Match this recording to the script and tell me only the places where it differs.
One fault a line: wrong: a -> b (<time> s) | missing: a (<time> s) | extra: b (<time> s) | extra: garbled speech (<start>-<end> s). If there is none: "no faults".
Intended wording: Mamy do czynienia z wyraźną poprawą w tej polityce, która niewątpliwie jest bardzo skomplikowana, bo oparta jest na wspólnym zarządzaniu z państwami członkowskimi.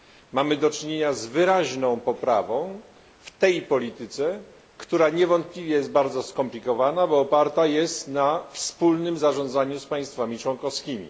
no faults